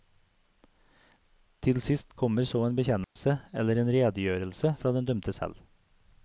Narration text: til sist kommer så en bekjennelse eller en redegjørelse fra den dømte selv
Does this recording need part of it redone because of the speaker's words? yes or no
no